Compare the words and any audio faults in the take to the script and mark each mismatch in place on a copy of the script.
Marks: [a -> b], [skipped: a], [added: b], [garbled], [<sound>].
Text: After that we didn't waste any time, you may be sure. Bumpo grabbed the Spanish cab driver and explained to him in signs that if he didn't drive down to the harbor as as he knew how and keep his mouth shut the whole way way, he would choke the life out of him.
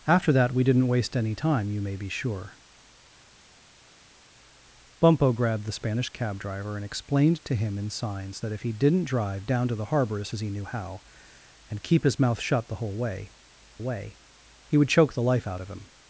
After that we didn't waste any time, you may be sure. Bumpo grabbed the Spanish cab driver and explained to him in signs that if he didn't drive down to the harbor as as he knew how and keep his mouth shut the whole way way, he would choke the life out of him.